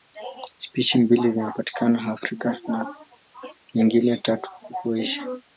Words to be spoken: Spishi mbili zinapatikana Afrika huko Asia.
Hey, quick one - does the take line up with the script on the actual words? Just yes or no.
no